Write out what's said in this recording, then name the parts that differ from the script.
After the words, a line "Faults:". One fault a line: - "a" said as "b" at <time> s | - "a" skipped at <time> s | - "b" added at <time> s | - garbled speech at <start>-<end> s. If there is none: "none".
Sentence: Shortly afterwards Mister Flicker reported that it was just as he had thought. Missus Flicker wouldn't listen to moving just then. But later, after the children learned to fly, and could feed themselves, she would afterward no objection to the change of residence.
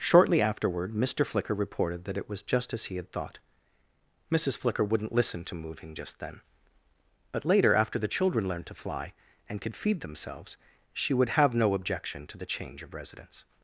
Shortly afterward Mister Flicker reported that it was just as he had thought. Missus Flicker wouldn't listen to moving just then. But later, after the children learned to fly, and could feed themselves, she would have no objection to the change of residence.
Faults:
- "afterwards" said as "afterward" at 0.4 s
- "afterward" said as "have" at 11.4 s